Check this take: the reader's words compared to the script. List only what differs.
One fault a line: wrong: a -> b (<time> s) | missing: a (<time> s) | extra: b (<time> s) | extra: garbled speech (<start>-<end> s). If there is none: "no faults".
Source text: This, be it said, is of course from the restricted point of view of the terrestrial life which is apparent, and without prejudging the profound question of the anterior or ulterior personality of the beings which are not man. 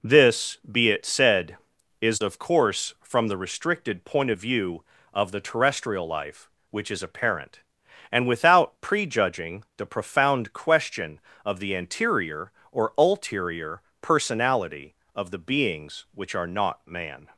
no faults